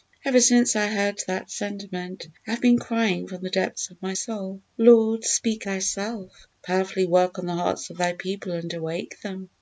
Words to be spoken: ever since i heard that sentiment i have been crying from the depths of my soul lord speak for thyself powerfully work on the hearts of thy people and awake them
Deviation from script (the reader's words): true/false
true